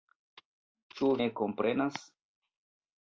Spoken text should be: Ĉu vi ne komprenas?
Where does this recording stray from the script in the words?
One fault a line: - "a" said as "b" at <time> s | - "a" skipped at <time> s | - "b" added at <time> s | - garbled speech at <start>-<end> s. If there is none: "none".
- "vi" skipped at 1.1 s